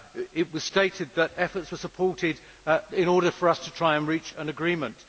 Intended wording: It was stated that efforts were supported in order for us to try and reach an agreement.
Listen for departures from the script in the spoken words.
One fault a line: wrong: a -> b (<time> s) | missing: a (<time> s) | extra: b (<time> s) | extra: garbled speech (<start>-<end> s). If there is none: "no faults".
no faults